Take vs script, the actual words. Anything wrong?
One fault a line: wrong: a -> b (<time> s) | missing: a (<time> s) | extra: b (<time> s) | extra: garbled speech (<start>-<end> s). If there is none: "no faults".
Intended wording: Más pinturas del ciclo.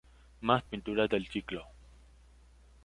no faults